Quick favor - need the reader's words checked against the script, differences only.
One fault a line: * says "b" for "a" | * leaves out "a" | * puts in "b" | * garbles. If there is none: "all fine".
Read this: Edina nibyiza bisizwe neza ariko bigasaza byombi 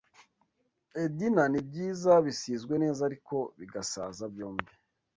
all fine